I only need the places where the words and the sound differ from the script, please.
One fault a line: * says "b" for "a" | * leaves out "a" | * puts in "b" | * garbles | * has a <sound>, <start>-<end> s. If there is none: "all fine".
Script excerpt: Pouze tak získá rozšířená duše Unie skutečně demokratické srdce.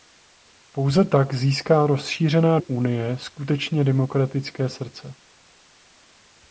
* leaves out "duše"